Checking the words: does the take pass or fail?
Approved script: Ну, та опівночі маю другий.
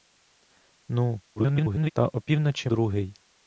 fail